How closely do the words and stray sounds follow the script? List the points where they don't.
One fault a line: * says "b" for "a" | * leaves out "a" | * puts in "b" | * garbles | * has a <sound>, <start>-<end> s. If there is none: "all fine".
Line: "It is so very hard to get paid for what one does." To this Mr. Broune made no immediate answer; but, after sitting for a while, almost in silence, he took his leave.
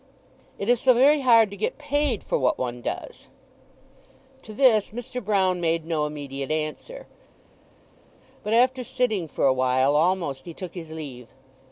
* leaves out "in silence"